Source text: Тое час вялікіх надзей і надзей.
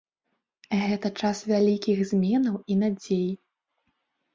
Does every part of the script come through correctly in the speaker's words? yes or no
no